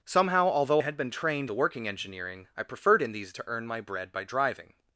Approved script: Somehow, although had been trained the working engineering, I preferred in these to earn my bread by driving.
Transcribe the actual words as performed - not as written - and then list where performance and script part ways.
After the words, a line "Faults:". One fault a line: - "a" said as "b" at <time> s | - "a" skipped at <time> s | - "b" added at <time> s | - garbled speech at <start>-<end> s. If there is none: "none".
Somehow, although had been trained the working engineering, I preferred in these to earn my bread by driving.
Faults:
none